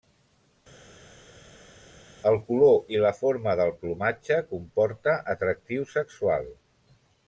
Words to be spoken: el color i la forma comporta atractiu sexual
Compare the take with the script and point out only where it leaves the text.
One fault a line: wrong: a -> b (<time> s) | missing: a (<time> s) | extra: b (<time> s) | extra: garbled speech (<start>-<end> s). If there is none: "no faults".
extra: del plomatge (3.6 s)